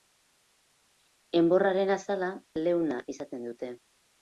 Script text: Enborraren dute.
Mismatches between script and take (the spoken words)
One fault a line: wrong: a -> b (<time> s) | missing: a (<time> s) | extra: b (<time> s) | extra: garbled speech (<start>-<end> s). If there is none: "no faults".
extra: azala leuna izaten (2.0 s)